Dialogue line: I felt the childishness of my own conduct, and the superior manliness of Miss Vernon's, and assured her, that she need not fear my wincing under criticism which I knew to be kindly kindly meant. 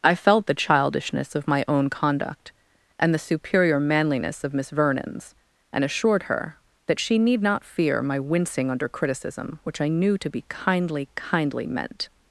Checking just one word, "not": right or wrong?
right